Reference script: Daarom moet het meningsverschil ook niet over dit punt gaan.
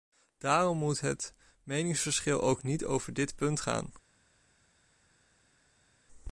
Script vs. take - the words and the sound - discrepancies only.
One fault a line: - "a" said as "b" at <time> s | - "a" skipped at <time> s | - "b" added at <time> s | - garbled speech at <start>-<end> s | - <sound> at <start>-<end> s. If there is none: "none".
none